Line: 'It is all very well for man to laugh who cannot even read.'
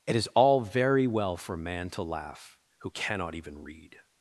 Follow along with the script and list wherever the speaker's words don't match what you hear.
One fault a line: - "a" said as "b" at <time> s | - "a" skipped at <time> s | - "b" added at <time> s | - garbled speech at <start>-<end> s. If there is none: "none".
none